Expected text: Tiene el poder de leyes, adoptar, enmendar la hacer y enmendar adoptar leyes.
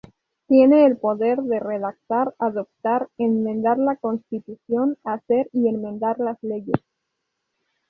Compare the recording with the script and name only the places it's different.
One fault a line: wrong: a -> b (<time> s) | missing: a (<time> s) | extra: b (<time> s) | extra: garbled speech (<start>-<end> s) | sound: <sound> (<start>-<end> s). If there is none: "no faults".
wrong: leyes -> redactar (1.6 s)
extra: constitución (4.0 s)
wrong: adoptar -> las (6.2 s)